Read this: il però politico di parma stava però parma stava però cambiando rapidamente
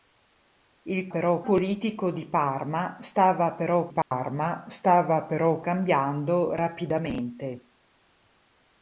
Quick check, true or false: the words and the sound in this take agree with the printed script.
false